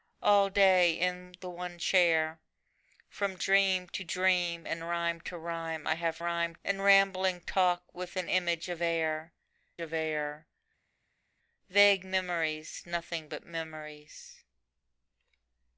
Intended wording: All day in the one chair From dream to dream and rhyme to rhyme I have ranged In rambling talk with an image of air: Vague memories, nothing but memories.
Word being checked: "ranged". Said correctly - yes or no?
no